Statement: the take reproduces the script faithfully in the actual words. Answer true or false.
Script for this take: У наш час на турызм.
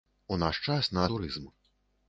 true